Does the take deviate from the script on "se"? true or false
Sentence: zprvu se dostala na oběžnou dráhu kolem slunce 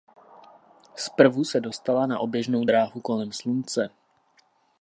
false